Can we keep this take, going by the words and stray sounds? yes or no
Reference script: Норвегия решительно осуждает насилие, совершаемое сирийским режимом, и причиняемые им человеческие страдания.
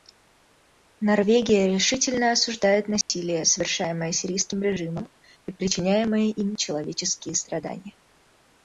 no